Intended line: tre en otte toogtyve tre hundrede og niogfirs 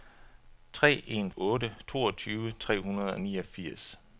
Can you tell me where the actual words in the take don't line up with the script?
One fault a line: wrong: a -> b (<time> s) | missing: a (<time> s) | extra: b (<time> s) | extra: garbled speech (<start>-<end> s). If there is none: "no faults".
no faults